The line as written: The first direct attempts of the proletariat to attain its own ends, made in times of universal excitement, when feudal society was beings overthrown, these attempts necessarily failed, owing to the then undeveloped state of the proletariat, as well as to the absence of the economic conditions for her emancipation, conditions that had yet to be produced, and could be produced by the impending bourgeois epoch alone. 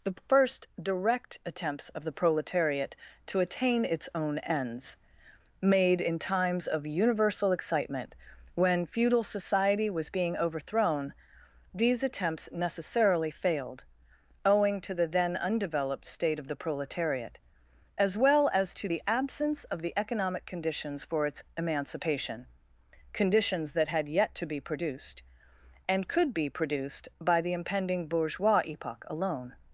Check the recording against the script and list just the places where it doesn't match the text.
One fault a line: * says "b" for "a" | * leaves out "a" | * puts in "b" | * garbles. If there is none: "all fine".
* says "being" for "beings"
* says "its" for "her"